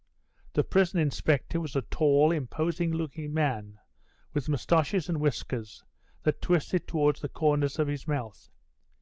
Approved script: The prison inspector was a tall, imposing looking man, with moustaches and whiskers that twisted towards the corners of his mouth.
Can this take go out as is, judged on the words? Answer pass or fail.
pass